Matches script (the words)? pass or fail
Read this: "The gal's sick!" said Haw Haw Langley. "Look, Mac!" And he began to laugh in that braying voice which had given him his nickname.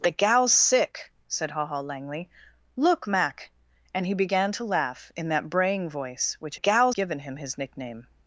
fail